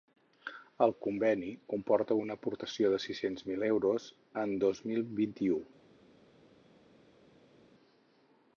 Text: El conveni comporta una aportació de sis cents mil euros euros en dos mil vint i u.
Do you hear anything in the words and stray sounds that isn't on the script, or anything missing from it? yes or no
yes